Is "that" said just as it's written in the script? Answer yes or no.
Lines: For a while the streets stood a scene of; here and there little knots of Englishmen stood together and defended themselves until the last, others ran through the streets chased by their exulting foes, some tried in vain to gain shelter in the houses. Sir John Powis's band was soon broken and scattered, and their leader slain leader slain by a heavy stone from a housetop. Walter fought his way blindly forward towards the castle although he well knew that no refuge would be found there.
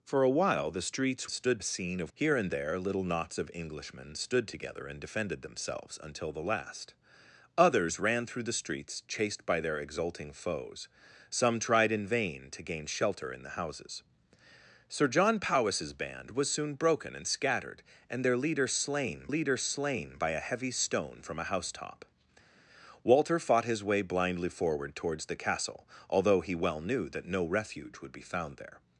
yes